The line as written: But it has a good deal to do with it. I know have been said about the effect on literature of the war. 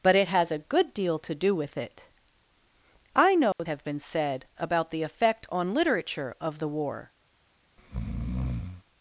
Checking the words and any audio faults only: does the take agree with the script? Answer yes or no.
no